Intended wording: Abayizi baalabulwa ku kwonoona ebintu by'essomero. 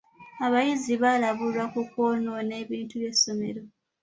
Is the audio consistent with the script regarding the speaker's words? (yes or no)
yes